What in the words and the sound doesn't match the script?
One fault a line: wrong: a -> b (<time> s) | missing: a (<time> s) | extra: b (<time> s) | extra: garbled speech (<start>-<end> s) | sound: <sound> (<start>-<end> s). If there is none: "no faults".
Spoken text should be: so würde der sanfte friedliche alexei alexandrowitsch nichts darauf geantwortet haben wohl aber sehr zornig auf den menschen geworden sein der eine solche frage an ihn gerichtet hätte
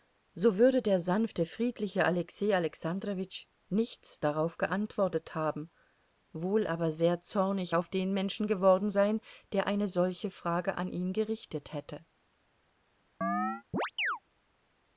sound: chirp (13.2-14.2 s)